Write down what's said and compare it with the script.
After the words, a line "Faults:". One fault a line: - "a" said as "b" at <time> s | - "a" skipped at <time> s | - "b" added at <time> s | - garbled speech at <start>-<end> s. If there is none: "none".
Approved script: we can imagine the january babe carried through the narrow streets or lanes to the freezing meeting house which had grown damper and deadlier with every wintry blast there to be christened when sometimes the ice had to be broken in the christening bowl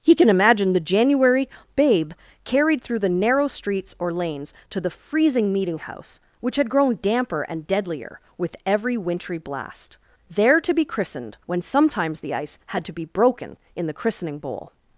he can imagine the january babe carried through the narrow streets or lanes to the freezing meeting house which had grown damper and deadlier with every wintry blast there to be christened when sometimes the ice had to be broken in the christening bowl
Faults:
- "we" said as "he" at 0.0 s